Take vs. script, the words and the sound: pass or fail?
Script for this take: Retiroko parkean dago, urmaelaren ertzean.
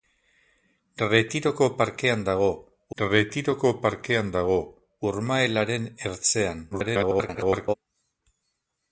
fail